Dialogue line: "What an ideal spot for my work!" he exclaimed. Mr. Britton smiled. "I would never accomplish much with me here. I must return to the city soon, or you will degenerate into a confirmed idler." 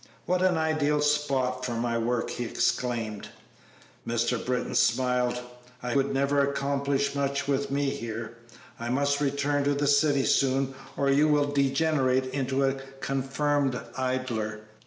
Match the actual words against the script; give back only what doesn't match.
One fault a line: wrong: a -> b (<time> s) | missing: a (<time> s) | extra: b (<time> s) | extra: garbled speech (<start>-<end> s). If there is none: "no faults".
no faults